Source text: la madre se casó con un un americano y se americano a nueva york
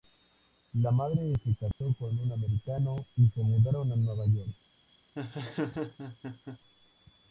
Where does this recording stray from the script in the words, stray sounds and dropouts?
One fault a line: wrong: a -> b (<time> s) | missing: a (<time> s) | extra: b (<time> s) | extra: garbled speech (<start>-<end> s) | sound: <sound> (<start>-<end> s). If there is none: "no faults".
sound: dropout (1.7-1.8 s)
missing: un (2.3 s)
wrong: americano -> mudaron (3.4 s)
sound: laugh (5.2-6.6 s)